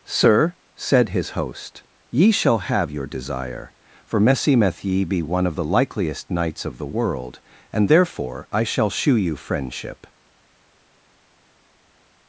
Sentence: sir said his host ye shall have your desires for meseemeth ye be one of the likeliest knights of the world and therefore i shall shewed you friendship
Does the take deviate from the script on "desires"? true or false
true